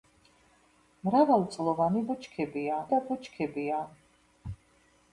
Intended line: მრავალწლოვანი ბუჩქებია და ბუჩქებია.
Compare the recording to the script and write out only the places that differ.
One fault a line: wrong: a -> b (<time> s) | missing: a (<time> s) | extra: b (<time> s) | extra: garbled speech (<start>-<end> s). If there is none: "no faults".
no faults